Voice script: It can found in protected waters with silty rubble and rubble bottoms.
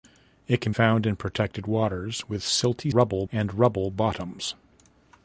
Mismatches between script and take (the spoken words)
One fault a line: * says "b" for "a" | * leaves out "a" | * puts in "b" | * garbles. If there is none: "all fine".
all fine